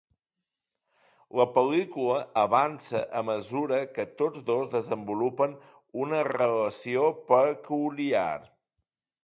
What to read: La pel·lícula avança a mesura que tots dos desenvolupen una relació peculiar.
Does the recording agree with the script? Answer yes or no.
yes